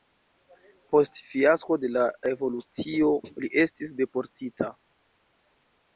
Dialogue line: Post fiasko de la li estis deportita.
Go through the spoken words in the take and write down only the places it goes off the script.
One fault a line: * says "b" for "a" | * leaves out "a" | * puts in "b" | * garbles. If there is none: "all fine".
* puts in "revolucio"